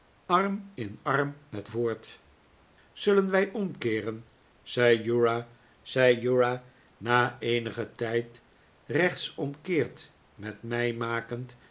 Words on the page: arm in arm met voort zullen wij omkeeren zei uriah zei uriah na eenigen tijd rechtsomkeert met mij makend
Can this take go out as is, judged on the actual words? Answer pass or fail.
pass